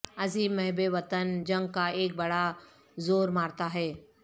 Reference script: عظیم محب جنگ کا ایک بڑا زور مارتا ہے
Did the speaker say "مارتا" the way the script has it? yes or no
yes